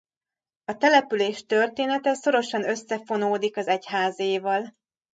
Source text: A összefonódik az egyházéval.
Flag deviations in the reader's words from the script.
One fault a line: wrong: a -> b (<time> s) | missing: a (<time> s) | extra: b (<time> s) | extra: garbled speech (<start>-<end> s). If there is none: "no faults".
extra: település története szorosan (0.8 s)